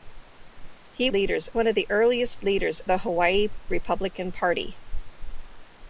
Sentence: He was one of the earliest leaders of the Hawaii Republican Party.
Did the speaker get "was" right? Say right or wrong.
wrong